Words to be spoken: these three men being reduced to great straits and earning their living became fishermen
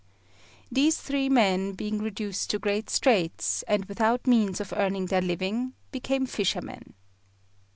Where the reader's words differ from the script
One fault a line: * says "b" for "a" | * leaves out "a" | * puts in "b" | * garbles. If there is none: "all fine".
* puts in "without means of"